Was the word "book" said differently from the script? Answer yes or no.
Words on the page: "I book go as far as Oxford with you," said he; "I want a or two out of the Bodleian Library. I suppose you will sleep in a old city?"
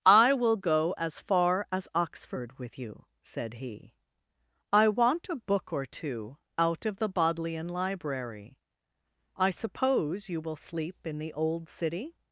yes